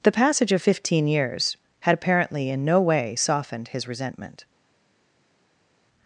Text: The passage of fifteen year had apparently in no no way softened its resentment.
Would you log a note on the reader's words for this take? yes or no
yes